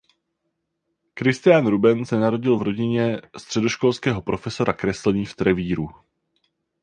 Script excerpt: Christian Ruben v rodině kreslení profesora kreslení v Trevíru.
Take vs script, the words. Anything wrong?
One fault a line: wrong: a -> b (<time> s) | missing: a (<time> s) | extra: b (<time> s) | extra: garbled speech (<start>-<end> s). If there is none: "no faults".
extra: se narodil (2.0 s)
wrong: kreslení -> středoškolského (3.4 s)